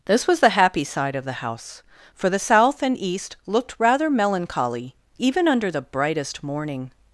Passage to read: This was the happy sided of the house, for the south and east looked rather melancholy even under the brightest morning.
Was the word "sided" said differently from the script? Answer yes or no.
yes